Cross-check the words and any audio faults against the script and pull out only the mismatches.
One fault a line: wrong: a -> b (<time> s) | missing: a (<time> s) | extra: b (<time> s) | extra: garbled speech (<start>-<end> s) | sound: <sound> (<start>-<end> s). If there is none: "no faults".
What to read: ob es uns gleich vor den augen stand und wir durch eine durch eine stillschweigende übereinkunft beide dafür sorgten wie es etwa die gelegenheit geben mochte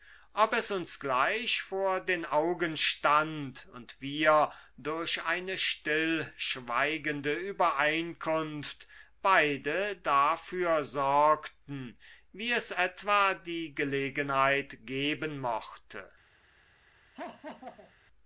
missing: durch eine (5.6 s)
sound: laugh (17.1-17.9 s)